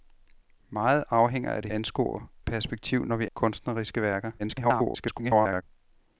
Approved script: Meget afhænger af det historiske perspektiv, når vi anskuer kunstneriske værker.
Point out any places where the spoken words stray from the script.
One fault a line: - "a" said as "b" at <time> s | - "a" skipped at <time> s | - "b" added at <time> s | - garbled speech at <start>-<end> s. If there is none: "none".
- "historiske" said as "anskuer" at 1.7 s
- "anskuer" skipped at 3.3 s
- garbled speech at 4.4-5.6 s